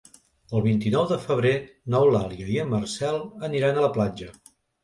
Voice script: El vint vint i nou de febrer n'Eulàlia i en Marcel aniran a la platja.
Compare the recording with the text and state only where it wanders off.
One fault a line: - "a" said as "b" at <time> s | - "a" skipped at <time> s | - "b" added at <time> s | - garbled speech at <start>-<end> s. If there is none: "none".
- "vint" skipped at 0.8 s